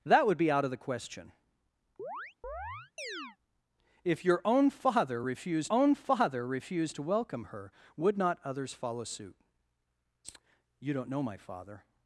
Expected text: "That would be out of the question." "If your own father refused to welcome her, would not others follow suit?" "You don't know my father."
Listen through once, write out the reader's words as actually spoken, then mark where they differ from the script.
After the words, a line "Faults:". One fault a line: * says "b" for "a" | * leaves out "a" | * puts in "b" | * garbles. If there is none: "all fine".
"That would be out of the question." "If your own father refused own father refused to welcome her, would not others follow suit?" "You don't know my father."
Faults:
* puts in "own father refused"